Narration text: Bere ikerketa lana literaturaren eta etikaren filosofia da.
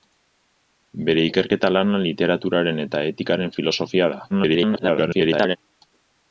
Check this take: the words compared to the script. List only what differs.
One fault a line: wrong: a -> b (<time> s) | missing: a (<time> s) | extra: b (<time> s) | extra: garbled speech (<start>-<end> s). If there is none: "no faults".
extra: garbled speech (4.3-5.6 s)